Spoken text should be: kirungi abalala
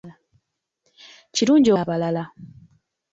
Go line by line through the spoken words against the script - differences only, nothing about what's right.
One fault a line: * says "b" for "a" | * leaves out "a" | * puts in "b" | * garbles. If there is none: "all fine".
all fine